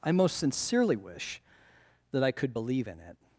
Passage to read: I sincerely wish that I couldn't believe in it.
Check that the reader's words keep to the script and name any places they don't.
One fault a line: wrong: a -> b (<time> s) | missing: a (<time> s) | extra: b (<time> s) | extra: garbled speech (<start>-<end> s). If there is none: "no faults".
extra: most (0.1 s)
wrong: couldn't -> could (2.3 s)